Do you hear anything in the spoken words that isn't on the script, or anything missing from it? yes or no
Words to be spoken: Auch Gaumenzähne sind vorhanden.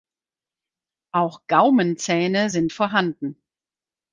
no